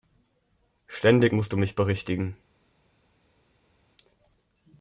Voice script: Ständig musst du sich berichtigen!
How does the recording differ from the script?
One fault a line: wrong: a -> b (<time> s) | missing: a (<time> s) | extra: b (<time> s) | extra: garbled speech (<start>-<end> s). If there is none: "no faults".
wrong: sich -> mich (1.6 s)